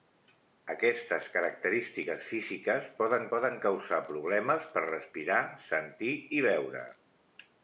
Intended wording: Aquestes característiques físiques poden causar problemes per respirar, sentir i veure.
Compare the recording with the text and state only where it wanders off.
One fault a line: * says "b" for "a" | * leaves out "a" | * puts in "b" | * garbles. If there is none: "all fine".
* puts in "poden"